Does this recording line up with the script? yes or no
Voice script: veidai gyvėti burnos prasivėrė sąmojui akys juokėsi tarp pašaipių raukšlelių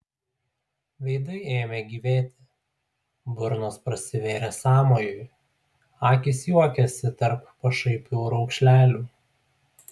no